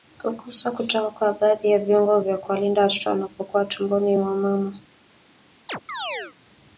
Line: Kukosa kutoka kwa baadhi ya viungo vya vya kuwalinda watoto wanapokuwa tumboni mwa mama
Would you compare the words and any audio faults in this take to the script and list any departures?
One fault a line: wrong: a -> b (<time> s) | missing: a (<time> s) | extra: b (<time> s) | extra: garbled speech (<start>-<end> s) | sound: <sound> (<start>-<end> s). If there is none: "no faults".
missing: vya (2.4 s)
sound: chirp (5.7-6.4 s)